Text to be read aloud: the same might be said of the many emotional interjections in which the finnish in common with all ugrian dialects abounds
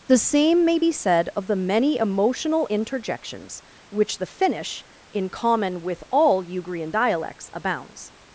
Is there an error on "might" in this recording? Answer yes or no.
yes